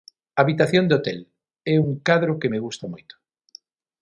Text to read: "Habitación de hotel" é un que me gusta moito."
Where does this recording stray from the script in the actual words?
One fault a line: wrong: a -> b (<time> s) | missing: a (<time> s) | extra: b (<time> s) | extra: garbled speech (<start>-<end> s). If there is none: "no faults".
extra: cadro (2.1 s)